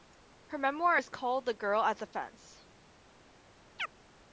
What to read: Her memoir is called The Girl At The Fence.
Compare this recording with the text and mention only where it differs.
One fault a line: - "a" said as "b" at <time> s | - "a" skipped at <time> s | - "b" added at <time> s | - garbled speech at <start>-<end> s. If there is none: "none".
none